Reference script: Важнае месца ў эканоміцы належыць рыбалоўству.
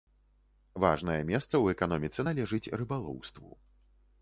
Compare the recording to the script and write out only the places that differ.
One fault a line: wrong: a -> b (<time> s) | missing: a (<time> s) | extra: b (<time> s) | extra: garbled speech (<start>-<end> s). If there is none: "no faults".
no faults